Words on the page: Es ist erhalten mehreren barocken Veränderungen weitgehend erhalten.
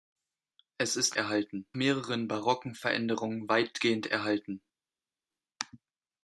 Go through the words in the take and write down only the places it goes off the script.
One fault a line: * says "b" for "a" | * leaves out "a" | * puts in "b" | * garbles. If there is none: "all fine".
all fine